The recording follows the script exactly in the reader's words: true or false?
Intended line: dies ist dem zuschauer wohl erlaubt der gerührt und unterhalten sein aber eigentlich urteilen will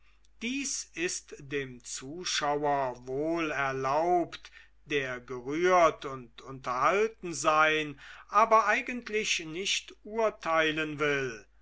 false